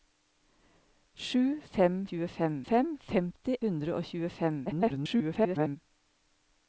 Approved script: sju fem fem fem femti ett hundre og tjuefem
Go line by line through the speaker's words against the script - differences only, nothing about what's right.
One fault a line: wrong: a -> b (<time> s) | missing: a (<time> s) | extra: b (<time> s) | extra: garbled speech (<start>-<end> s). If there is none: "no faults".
wrong: fem -> tjuefem (2.1 s)
missing: ett (3.5 s)
extra: garbled speech (4.7-5.8 s)